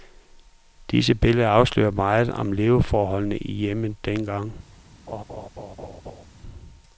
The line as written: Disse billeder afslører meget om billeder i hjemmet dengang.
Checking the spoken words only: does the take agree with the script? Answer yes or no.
no